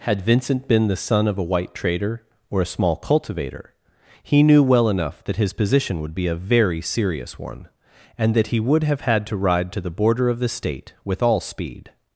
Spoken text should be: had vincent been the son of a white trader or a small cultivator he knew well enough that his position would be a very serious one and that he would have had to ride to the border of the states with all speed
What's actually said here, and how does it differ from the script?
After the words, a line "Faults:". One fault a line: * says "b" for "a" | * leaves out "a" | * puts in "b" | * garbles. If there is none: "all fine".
had vincent been the son of a white trader or a small cultivator he knew well enough that his position would be a very serious one and that he would have had to ride to the border of the state with all speed
Faults:
* says "state" for "states"